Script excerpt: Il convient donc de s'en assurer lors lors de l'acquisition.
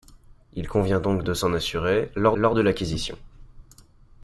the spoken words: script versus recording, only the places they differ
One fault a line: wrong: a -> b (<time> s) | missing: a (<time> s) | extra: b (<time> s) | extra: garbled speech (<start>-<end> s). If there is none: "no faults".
no faults